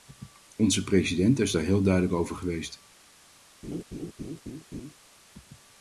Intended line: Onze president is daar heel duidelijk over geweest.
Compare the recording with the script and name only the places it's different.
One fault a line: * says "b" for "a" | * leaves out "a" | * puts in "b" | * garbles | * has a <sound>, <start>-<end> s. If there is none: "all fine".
* has a laugh, 3.6-4.9 s